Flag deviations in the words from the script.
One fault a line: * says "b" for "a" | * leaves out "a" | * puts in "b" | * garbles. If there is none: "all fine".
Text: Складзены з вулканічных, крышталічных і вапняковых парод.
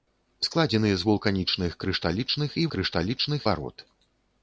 * says "крышталічных" for "вапняковых"